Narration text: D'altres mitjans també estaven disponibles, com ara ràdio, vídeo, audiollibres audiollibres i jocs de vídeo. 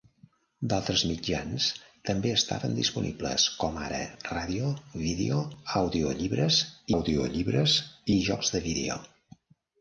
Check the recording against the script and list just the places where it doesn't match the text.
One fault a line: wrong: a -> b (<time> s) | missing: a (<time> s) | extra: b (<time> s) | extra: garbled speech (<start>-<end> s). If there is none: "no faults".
no faults